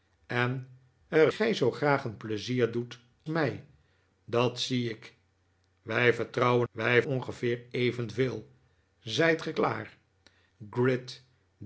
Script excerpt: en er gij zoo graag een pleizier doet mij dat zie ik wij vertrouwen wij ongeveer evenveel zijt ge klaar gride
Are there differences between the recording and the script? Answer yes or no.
no